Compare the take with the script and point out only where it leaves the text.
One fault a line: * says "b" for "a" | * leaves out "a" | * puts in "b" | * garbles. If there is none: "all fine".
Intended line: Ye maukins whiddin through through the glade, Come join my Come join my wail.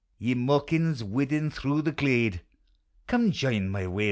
* leaves out "through"
* leaves out "Come join my"